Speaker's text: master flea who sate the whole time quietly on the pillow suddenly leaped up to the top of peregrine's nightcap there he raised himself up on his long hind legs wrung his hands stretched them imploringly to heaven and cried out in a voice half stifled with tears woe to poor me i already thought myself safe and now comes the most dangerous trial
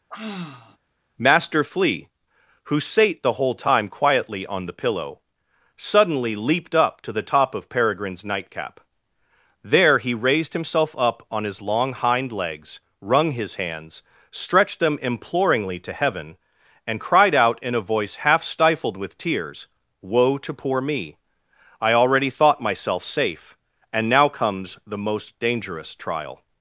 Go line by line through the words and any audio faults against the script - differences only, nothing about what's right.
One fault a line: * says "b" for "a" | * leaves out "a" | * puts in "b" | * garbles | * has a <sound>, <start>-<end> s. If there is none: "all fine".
* has a sigh, 0.1-0.8 s